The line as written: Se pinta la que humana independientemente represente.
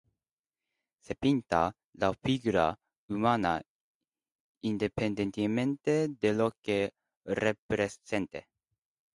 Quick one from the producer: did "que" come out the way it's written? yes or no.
no